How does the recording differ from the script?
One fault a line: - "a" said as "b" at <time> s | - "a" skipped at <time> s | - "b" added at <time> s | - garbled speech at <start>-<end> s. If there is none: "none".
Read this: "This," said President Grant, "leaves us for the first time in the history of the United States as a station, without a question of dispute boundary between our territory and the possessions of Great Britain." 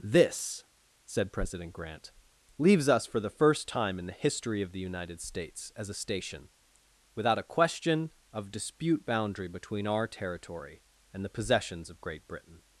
none